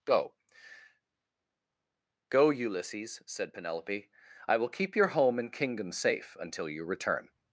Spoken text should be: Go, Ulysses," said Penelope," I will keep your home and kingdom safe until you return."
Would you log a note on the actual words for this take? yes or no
yes